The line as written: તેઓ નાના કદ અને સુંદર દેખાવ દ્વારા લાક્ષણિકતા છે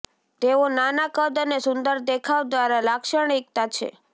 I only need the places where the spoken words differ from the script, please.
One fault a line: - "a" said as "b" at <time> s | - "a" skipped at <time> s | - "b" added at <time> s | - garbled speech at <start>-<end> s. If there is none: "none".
none